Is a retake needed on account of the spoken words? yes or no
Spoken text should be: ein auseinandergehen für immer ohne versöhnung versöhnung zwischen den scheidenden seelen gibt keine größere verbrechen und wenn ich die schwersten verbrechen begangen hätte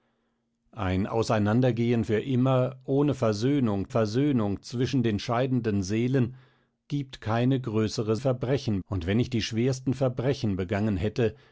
no